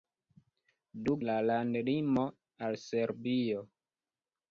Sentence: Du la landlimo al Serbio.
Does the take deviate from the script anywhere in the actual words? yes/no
no